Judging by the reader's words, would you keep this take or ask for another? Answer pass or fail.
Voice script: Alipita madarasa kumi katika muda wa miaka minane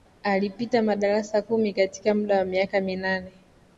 pass